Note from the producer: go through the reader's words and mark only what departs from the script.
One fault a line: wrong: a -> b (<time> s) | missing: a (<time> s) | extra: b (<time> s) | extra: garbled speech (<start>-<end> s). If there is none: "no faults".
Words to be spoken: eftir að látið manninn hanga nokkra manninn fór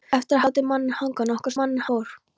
no faults